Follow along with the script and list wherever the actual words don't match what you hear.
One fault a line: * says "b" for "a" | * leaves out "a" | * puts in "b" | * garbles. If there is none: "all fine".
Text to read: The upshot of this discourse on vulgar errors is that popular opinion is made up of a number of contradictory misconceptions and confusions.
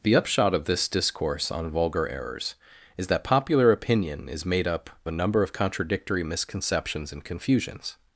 * leaves out "of"